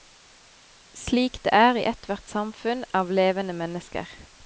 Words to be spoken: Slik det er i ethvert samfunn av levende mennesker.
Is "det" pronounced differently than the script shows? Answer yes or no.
no